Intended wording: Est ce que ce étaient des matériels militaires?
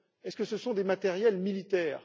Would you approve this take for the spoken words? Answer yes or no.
no